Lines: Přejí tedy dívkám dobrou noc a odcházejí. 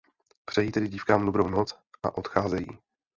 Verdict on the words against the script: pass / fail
pass